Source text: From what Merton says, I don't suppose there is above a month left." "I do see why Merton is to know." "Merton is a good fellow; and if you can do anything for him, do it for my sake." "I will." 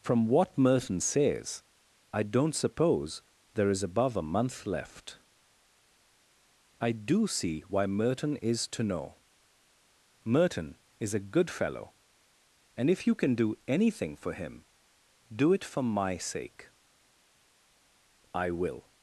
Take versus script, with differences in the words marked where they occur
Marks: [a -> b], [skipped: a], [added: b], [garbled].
From what Merton says, I don't suppose there is above a month left." "I do see why Merton is to know." "Merton is a good fellow; and if you can do anything for him, do it for my sake." "I will."